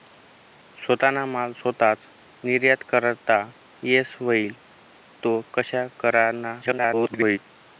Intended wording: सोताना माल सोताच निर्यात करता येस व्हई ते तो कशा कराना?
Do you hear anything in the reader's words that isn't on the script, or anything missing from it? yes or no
yes